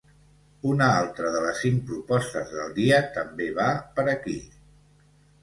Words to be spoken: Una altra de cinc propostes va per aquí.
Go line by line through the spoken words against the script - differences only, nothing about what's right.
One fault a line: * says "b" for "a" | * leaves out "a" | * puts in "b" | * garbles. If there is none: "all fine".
* puts in "les"
* puts in "del dia també"